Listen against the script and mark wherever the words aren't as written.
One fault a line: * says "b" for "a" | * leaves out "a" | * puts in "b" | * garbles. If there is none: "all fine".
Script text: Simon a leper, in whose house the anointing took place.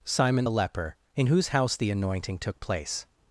* says "the" for "a"